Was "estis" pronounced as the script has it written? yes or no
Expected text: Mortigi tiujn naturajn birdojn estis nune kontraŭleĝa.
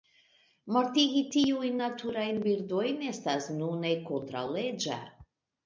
no